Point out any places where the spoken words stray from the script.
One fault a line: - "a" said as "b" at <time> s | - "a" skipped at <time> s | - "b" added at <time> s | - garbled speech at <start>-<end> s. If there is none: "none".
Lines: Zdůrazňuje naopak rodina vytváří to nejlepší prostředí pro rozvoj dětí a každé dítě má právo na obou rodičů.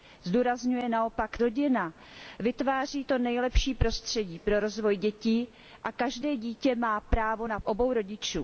none